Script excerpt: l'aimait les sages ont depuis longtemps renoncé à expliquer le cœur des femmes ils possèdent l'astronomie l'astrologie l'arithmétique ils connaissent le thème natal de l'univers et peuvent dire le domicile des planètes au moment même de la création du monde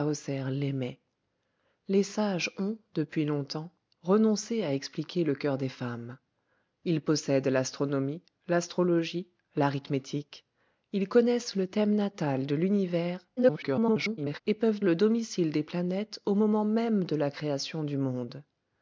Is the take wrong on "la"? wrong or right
right